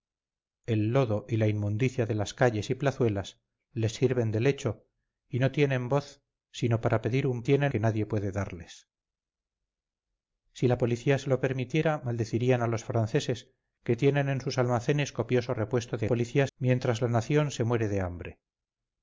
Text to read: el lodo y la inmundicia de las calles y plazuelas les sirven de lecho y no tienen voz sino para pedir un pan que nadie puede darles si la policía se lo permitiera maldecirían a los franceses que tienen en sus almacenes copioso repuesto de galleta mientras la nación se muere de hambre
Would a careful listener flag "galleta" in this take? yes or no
yes